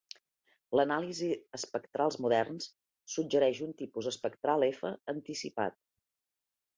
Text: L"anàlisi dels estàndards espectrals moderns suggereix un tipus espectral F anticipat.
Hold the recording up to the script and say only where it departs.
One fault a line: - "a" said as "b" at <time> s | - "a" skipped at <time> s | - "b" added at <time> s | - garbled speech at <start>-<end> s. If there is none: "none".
- "dels estàndards" skipped at 1.3 s